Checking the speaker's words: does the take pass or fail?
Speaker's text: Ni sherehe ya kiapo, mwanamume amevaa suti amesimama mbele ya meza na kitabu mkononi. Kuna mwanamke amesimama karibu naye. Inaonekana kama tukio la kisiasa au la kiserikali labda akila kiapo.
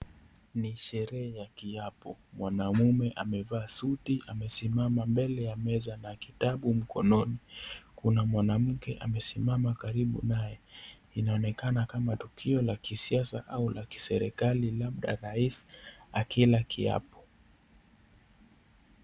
fail